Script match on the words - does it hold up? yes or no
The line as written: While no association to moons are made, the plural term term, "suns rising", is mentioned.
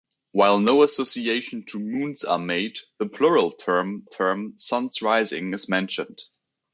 yes